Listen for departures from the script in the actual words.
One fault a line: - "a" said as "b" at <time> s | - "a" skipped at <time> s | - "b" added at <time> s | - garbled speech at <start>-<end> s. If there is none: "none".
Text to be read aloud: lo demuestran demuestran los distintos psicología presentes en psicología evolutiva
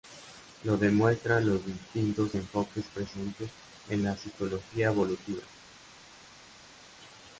- "demuestran" skipped at 1.4 s
- "psicología" said as "enfoques" at 2.3 s
- "la" added at 4.0 s